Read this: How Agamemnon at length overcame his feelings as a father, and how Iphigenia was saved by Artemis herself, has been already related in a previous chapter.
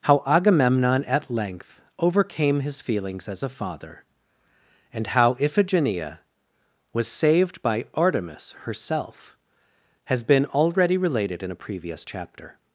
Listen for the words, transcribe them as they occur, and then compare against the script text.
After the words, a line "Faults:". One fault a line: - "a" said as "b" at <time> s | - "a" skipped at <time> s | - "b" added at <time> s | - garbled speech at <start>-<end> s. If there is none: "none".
How Agamemnon at length overcame his feelings as a father, and how Iphigenia was saved by Artemis herself, has been already related in a previous chapter.
Faults:
none